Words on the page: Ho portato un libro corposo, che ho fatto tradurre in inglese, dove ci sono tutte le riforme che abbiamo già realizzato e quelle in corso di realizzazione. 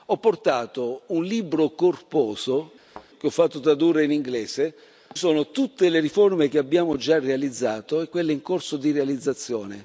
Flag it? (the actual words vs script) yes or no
yes